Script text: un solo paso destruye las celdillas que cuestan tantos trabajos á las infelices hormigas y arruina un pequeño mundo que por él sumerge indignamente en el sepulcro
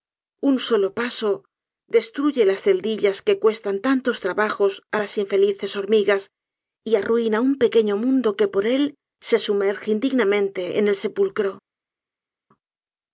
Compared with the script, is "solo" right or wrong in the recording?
right